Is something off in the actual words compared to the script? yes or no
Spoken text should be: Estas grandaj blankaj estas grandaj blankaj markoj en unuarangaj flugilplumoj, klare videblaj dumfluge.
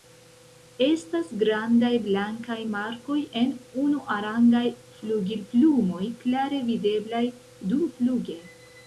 yes